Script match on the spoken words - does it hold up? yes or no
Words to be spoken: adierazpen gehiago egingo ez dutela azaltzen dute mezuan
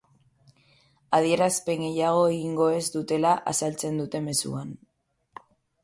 yes